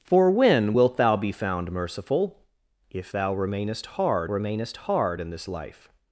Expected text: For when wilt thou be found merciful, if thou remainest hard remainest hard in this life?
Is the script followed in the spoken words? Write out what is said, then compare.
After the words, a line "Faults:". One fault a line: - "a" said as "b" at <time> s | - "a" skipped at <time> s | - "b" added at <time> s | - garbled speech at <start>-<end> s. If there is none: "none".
For when wilt thou be found merciful, if thou remainest hard remainest hard in this life?
Faults:
none